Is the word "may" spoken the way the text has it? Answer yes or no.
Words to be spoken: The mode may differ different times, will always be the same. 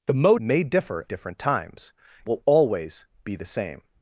yes